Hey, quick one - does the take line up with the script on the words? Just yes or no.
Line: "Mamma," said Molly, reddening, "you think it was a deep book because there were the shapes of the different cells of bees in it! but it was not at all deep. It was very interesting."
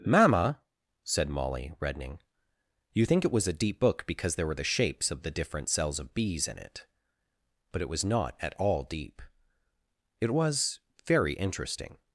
yes